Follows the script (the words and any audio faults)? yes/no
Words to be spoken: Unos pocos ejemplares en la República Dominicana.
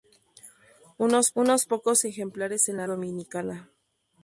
no